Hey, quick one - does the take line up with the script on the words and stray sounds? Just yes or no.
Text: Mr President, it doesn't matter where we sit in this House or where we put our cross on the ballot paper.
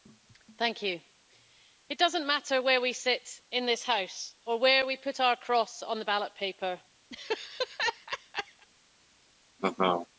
no